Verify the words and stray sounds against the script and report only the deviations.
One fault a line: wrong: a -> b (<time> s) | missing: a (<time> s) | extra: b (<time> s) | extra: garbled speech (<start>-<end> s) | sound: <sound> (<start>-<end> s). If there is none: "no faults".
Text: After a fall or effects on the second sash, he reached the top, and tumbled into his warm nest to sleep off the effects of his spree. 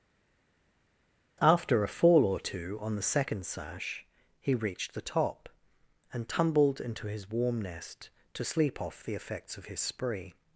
wrong: effects -> two (2.4 s)